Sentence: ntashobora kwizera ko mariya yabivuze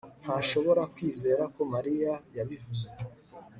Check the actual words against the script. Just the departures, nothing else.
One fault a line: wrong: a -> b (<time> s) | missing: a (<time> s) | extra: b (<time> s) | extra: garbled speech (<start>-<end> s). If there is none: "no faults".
no faults